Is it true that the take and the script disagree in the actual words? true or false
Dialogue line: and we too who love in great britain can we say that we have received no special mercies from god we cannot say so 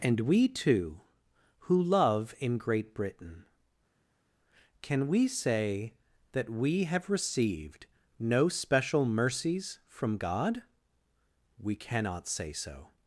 false